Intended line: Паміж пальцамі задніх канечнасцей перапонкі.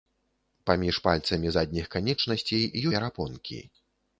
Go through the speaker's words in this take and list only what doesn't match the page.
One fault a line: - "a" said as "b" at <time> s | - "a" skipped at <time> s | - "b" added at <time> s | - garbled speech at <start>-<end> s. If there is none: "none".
none